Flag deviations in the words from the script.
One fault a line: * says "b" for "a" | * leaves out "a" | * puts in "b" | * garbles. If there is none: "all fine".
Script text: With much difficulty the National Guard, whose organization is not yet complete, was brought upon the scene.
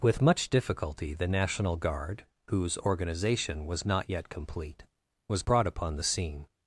* says "was" for "is"